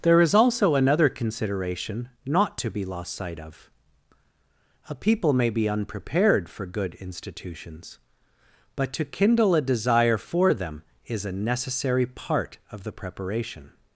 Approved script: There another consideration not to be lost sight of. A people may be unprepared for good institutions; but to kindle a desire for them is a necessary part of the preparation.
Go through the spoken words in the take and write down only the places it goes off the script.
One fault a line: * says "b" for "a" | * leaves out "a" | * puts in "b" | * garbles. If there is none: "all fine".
* puts in "is also"